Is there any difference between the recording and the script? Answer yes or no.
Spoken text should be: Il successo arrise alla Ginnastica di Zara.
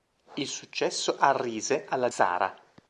yes